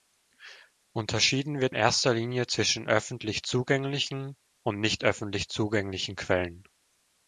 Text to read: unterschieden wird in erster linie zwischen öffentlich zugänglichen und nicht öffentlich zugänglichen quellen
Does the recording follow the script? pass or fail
fail